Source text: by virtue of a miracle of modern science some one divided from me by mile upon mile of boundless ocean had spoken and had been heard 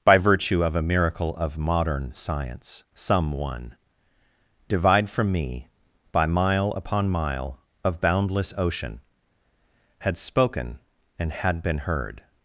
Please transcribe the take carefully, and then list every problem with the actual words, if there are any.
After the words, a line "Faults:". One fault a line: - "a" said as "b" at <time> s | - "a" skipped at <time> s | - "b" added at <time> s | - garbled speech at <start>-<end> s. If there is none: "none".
by virtue of a miracle of modern science some one divide from me by mile upon mile of boundless ocean had spoken and had been heard
Faults:
- "divided" said as "divide" at 4.7 s